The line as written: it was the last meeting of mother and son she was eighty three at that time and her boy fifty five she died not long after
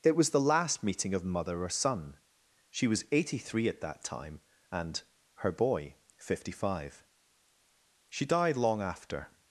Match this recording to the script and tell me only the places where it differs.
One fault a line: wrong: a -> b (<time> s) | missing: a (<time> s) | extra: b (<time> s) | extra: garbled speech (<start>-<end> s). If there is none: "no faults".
wrong: and -> or (1.6 s)
missing: not (8.6 s)